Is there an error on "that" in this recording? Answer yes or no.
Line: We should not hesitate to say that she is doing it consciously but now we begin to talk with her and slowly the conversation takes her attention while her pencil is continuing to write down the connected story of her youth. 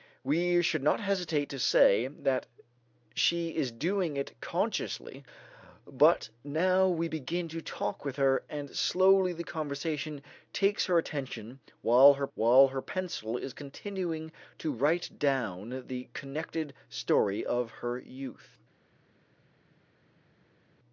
no